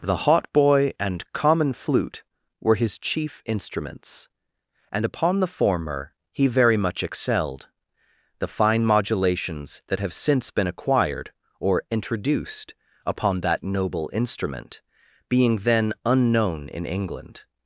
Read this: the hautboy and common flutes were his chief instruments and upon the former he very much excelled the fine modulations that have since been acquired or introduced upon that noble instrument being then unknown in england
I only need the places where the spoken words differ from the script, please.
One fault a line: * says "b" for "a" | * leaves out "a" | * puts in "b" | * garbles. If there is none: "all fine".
* says "flute" for "flutes"